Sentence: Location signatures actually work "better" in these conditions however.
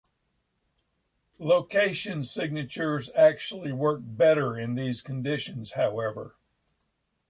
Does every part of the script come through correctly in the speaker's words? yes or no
yes